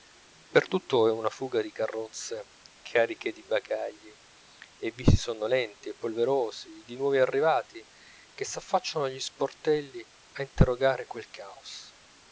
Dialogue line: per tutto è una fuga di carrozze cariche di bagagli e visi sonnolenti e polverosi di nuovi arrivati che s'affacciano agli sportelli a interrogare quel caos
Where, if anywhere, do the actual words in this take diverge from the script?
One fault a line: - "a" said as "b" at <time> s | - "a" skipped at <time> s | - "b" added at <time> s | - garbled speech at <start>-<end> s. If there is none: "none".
none